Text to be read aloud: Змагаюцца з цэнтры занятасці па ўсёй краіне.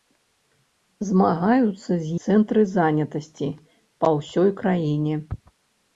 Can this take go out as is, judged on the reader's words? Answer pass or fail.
pass